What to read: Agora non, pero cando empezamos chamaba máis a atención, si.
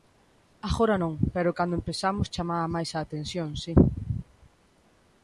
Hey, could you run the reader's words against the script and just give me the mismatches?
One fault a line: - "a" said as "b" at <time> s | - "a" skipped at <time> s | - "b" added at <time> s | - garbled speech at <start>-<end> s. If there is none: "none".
none